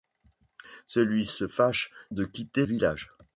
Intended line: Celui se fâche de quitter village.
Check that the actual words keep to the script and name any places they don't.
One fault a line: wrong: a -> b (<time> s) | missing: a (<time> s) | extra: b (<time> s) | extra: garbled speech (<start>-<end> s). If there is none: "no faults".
no faults